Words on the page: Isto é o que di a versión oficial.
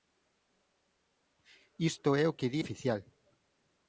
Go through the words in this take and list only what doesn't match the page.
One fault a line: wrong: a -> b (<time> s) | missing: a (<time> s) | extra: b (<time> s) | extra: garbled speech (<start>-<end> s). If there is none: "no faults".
missing: a versión (2.6 s)